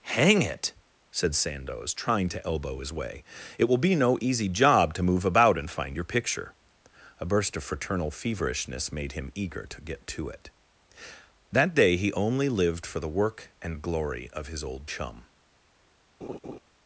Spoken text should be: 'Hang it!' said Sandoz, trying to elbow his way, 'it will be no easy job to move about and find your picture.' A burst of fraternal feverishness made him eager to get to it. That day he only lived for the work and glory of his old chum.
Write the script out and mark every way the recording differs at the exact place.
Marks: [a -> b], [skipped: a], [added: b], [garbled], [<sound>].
'Hang it!' said Sandoz, trying to elbow his way, 'it will be no easy job to move about and find your picture.' A burst of fraternal feverishness made him eager to get to it. That day he only lived for the work and glory of his old chum. [laugh]